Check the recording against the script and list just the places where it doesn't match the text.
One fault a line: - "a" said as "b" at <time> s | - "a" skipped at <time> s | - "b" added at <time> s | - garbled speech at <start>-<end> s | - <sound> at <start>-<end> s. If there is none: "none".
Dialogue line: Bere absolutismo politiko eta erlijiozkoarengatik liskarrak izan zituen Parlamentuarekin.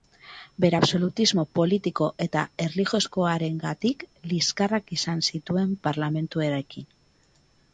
none